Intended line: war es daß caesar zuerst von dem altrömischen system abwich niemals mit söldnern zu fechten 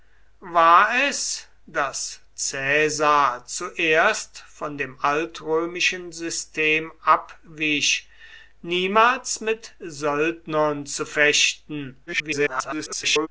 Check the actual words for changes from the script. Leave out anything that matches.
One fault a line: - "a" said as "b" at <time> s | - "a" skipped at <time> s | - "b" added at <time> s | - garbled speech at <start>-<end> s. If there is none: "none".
- garbled speech at 12.1-13.3 s